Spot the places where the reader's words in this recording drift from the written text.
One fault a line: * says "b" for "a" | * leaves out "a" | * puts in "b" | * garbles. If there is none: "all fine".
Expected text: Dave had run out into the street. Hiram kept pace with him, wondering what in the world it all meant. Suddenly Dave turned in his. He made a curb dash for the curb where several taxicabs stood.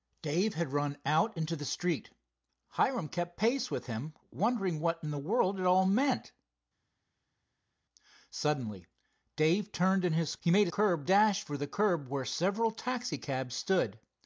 all fine